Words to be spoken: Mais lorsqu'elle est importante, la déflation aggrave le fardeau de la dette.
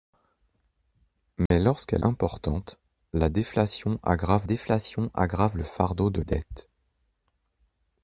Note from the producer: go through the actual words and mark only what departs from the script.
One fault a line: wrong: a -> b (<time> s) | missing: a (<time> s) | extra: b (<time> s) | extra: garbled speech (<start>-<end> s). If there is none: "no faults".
missing: est (2.0 s)
extra: déflation aggrave (4.4 s)
missing: la (6.2 s)